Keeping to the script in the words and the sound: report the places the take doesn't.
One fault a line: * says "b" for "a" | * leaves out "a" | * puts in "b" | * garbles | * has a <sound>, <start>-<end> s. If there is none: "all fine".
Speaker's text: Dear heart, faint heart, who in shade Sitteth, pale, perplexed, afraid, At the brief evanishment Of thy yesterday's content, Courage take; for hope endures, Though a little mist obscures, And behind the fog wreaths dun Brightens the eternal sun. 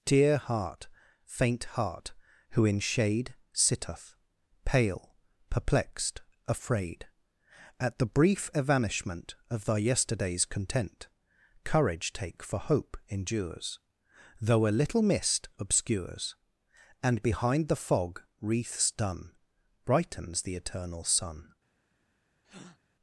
* has a breath, 22.4-22.8 s